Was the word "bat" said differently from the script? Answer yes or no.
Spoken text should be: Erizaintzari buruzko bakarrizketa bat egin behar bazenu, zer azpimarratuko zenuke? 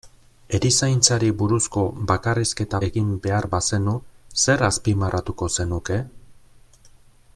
yes